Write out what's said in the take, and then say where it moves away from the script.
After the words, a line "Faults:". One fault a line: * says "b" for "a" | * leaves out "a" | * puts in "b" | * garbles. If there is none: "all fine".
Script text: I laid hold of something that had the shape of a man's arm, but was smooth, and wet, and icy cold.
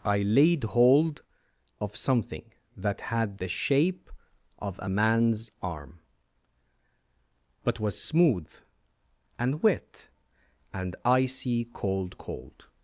I laid hold of something that had the shape of a man's arm, but was smooth, and wet, and icy cold cold.
Faults:
* puts in "cold"